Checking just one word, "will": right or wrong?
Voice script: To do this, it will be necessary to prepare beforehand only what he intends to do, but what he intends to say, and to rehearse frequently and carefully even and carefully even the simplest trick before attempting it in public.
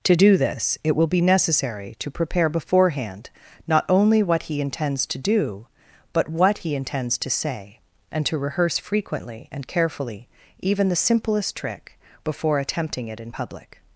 right